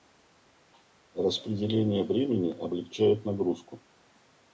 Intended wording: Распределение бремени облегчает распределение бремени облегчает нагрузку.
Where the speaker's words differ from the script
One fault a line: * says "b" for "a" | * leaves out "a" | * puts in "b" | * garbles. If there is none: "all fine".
* leaves out "распределение бремени облегчает"